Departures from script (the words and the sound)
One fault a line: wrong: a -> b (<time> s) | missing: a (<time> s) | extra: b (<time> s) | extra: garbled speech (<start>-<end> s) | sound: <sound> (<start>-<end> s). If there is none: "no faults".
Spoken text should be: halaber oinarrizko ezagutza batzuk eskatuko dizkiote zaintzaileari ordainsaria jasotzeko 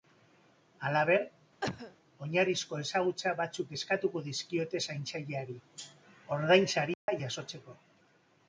sound: cough (1.6-2.0 s)
sound: dropout (6.9-7.1 s)